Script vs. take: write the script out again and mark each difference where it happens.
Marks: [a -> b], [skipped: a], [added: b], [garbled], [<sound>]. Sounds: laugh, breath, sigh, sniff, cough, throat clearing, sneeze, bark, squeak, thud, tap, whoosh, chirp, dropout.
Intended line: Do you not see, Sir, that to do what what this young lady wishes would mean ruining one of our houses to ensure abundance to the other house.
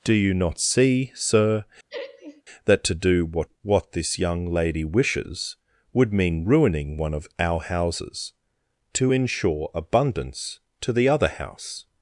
Do you not see, Sir, [laugh] that to do what what this young lady wishes would mean ruining one of our houses to ensure abundance to the other house.